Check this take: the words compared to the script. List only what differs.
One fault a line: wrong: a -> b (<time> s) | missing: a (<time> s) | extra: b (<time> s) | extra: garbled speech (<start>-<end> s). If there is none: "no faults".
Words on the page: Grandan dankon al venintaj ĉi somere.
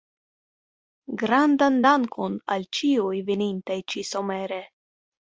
extra: ĉiuj (2.8 s)